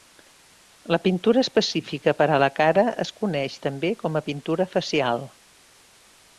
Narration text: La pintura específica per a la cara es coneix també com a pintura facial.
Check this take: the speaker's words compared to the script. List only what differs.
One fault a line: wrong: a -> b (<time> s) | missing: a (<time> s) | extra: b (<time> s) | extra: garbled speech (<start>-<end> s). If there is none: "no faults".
no faults